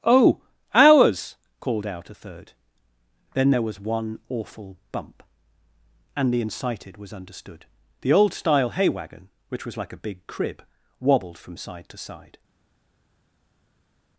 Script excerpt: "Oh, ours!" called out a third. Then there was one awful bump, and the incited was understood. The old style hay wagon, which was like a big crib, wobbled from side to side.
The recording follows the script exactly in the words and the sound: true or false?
true